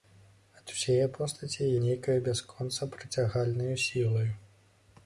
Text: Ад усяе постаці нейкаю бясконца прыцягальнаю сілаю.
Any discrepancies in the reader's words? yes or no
no